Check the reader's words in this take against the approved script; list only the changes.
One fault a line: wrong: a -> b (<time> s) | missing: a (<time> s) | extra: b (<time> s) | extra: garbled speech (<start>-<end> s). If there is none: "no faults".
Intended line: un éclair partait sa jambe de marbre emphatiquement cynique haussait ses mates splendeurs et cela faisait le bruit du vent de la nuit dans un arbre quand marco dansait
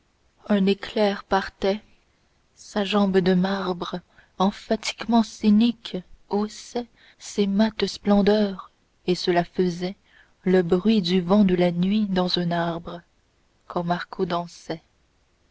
no faults